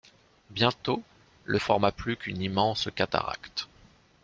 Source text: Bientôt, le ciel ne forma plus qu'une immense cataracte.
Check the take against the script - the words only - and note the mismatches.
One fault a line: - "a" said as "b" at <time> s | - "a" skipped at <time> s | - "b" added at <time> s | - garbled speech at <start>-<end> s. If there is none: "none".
- "ciel ne" skipped at 1.6 s